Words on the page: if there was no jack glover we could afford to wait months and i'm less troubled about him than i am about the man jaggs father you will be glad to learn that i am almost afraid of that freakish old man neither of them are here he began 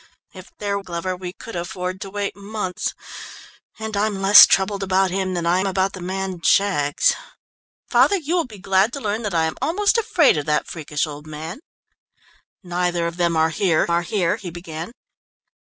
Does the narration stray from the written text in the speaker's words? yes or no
yes